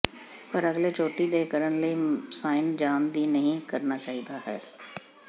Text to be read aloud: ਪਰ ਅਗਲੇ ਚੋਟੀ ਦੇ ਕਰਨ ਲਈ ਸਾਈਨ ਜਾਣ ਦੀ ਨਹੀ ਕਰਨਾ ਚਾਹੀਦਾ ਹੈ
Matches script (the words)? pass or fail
pass